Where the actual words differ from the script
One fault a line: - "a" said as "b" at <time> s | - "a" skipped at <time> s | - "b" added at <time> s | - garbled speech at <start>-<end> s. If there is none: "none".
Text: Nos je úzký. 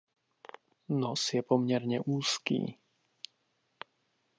- "poměrně" added at 1.4 s